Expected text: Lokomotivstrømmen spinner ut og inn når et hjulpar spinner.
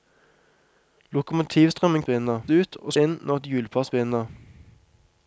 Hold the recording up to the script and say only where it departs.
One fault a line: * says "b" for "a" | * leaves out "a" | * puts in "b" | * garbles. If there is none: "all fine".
all fine